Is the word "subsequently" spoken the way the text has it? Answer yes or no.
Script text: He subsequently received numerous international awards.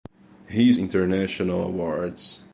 no